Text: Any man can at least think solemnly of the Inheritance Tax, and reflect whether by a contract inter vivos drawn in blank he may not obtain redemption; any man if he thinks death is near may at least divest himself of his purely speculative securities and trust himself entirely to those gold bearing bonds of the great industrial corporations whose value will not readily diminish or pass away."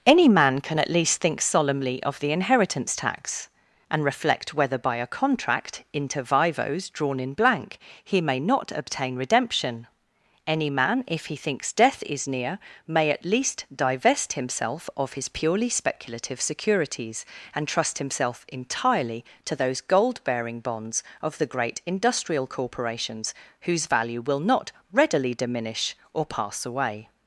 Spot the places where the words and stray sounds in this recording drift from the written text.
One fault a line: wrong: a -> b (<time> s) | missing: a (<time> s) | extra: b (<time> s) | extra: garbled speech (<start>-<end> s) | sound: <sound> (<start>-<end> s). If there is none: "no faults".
no faults